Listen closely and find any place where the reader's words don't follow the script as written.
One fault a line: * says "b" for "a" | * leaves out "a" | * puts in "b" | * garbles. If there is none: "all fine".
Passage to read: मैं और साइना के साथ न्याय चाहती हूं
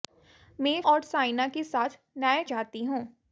all fine